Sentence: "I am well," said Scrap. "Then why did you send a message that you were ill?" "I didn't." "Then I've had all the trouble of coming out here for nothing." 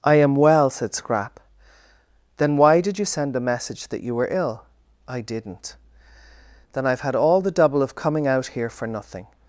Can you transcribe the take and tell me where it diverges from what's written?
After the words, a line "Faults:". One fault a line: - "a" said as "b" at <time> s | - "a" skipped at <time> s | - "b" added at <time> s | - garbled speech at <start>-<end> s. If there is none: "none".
"I am well," said Scrap. "Then why did you send a message that you were ill?" "I didn't." "Then I've had all the double of coming out here for nothing."
Faults:
- "trouble" said as "double" at 7.5 s